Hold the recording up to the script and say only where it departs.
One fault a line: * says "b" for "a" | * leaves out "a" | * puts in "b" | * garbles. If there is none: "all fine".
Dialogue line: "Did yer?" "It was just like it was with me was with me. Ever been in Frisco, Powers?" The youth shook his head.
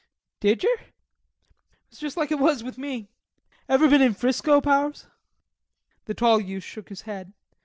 * leaves out "was with me"
* puts in "tall"